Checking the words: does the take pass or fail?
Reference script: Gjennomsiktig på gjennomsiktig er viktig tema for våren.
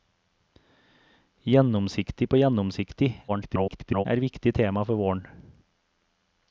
fail